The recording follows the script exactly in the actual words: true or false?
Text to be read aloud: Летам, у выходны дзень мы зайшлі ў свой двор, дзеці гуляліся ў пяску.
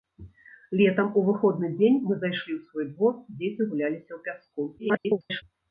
false